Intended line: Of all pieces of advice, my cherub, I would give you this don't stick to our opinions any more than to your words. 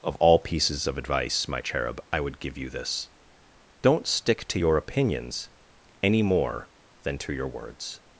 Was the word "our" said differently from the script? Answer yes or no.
yes